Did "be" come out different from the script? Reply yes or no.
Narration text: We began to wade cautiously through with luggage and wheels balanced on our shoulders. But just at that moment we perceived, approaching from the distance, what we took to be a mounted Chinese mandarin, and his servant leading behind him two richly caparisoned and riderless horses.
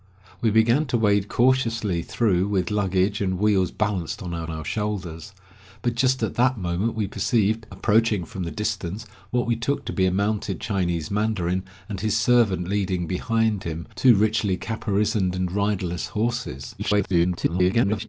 no